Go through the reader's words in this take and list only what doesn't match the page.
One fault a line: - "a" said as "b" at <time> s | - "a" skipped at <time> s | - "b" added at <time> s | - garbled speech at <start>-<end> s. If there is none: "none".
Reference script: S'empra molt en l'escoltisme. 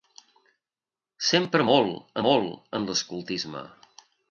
- "molt" added at 2.3 s